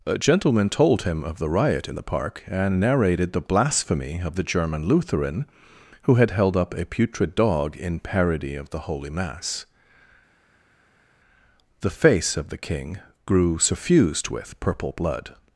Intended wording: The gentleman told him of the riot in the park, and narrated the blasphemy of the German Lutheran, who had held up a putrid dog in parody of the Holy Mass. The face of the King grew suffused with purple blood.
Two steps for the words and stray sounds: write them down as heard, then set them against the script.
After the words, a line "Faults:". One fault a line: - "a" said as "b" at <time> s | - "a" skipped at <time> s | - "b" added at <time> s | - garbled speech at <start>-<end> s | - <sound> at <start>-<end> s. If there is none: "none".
A gentleman told him of the riot in the park, and narrated the blasphemy of the German Lutheran, who had held up a putrid dog in parody of the Holy Mass. The face of the King grew suffused with purple blood.
Faults:
- "The" said as "A" at 0.1 s